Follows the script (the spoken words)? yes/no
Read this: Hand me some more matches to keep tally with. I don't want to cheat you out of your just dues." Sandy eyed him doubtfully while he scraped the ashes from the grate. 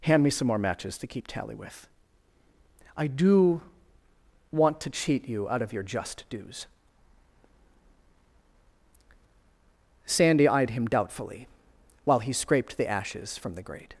no